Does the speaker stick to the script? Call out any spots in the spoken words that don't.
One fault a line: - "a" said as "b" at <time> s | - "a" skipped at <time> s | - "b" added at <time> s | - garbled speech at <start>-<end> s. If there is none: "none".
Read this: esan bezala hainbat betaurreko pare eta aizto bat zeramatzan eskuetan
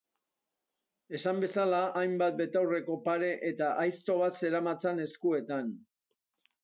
none